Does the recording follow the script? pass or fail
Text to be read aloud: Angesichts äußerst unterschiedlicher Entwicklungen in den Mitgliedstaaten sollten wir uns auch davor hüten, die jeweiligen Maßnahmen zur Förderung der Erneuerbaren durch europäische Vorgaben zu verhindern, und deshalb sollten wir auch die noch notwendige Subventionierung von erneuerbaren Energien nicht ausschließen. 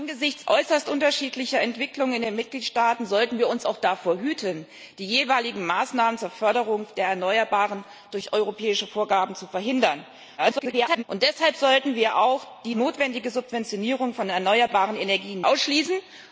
fail